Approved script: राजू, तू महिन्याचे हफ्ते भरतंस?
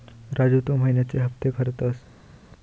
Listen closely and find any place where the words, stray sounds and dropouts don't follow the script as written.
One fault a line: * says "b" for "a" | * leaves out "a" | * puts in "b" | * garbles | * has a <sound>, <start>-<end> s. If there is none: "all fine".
all fine